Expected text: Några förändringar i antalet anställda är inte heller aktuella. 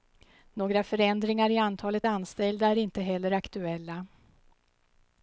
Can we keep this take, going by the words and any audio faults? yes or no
yes